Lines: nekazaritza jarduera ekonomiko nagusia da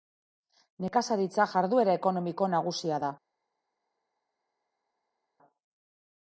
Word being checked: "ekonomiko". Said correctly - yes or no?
yes